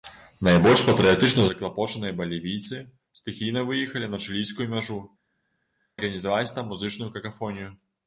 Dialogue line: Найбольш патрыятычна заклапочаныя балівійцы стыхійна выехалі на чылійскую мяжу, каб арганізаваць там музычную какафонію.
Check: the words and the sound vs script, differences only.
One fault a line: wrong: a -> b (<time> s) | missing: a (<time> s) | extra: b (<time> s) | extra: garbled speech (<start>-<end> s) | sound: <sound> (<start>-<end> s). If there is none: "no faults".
missing: каб (5.0 s)